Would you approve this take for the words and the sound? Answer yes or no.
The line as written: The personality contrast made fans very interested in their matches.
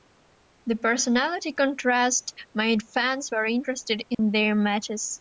no